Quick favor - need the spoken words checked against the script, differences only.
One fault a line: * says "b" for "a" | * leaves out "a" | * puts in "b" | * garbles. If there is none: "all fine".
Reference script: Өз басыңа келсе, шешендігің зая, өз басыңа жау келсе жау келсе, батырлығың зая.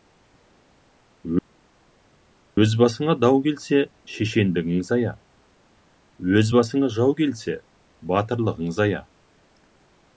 * puts in "дау"
* leaves out "жау келсе"